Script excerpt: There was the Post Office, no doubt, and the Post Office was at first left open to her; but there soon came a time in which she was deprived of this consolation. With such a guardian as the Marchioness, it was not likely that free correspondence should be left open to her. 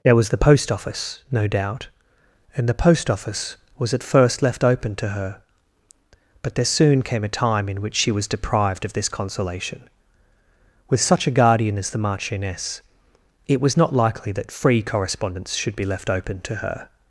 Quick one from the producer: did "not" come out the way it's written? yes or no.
yes